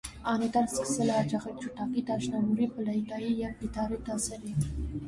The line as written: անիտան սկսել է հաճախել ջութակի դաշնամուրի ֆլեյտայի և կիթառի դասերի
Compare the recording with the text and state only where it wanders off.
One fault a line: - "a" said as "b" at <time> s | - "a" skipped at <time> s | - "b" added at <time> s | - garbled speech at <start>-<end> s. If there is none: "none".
none